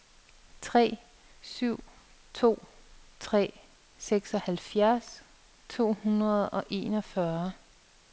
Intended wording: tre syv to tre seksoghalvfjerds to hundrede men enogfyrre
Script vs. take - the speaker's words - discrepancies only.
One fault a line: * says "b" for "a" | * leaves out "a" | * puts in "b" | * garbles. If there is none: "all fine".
* says "og" for "men"